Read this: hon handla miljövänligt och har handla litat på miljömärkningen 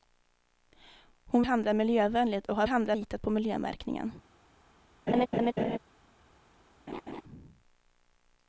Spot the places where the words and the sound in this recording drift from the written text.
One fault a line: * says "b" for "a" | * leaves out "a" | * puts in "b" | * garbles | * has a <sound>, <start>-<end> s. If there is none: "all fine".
* has a laugh, 5.1-5.8 s
* has a laugh, 6.9-7.2 s